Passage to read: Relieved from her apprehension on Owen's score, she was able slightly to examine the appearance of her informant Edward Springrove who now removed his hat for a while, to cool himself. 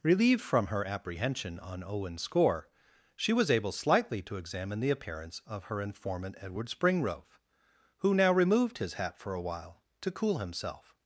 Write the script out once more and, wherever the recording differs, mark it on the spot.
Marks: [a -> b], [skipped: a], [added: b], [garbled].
Relieved from her apprehension on Owen's score, she was able slightly to examine the appearance of her informant Edward Springrove who now removed his hat for a while, to cool himself.